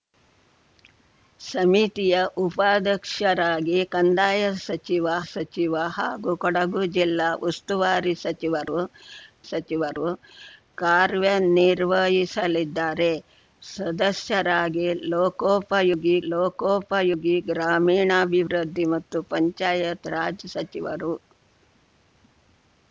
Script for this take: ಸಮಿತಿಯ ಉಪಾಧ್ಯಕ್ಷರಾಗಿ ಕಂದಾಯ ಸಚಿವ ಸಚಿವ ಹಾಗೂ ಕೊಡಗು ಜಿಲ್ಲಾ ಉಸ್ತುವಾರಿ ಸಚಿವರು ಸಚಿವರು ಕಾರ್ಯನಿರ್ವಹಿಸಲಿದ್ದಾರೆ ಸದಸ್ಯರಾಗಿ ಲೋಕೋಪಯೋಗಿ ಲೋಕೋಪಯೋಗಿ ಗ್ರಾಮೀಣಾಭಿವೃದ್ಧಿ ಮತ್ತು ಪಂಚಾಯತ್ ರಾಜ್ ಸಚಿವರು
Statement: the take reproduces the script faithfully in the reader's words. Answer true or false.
true